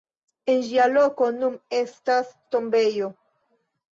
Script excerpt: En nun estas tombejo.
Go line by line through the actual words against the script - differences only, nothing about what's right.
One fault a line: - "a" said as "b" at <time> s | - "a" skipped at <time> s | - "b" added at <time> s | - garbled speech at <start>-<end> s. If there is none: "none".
- "ĝia loko" added at 0.7 s